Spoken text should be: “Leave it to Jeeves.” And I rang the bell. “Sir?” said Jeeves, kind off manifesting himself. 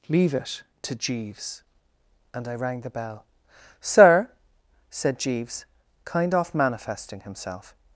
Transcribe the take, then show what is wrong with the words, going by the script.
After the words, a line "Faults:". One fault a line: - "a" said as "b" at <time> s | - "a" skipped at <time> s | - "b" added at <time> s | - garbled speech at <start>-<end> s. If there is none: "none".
“Leave it to Jeeves.” And I rang the bell. “Sir?” said Jeeves, kind off manifesting himself.
Faults:
none